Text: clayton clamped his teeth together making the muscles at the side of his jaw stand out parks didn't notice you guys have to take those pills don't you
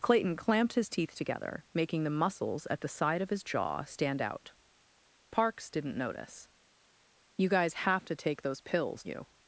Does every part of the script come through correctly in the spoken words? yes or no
no